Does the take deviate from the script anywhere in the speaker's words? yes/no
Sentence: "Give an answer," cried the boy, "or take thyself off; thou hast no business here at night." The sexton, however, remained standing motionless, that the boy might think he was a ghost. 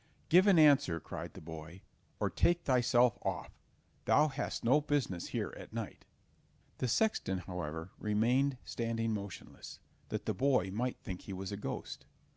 no